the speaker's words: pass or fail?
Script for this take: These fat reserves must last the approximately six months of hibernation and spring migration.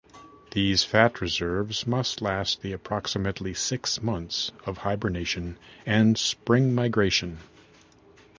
pass